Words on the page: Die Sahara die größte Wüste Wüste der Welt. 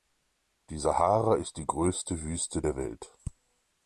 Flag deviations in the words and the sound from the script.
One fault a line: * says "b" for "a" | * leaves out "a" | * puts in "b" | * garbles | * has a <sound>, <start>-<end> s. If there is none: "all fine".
* puts in "ist"
* leaves out "Wüste"